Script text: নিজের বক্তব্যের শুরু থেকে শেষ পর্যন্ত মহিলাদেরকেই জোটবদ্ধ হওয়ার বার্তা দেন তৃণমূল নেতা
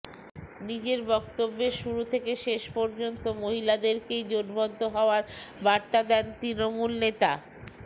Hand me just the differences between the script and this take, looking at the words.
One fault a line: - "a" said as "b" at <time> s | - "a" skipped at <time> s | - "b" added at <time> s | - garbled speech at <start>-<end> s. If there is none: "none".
none